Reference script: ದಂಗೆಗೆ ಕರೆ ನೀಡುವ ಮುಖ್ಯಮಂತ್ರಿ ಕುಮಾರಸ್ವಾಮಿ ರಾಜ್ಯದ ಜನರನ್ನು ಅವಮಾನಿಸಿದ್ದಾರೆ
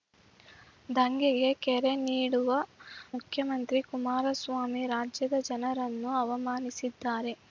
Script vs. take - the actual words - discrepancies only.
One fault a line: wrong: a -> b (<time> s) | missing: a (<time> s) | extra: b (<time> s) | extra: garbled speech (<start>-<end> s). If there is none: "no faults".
no faults